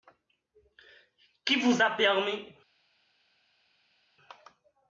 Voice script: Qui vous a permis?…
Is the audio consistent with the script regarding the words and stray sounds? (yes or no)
yes